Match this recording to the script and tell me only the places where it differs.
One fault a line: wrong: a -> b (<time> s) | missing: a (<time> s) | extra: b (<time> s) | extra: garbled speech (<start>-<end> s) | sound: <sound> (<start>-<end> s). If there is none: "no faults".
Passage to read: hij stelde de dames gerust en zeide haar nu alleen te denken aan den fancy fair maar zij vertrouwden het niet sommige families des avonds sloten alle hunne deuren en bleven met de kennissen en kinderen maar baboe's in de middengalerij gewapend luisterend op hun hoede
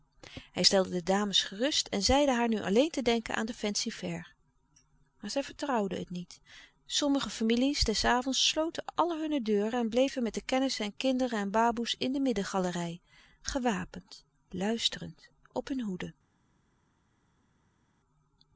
wrong: maar -> en (11.4 s)